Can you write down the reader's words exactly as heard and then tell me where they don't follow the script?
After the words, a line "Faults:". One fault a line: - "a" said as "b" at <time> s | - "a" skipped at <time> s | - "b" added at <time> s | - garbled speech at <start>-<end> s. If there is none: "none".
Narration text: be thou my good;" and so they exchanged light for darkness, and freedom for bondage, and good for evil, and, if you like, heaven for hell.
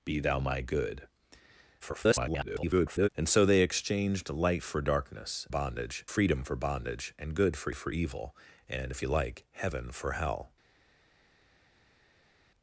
be thou my good;" [garbled] and so they exchanged light for darkness, bondage freedom for bondage, and good for for evil, and, if you like, heaven for hell.
Faults:
- garbled speech at 1.8-3.1 s
- "and" said as "bondage" at 5.5 s
- "for" added at 7.7 s